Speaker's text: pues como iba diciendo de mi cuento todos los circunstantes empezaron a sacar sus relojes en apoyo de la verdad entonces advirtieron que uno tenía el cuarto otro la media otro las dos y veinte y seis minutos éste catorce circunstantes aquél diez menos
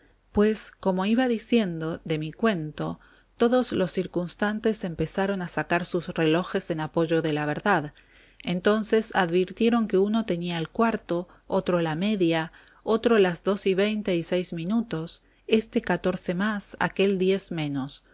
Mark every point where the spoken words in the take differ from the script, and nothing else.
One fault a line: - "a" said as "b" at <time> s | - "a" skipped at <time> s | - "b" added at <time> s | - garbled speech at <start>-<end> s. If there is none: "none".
- "circunstantes" said as "más" at 16.3 s